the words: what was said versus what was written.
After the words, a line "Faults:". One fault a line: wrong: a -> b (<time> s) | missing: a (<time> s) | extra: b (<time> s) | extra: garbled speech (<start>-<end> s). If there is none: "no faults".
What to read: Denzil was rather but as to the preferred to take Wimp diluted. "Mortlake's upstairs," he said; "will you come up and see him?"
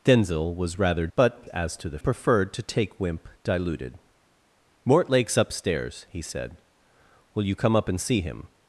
Denzil was rather but as to the preferred to take Wimp diluted. "Mortlake's upstairs," he said; "will you come up and see him?"
Faults:
no faults